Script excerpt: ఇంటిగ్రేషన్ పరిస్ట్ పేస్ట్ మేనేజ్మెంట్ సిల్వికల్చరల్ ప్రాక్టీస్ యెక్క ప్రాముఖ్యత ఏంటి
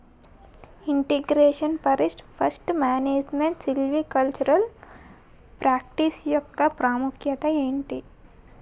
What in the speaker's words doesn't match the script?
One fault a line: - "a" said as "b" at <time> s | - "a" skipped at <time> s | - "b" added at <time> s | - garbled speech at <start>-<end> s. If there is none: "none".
none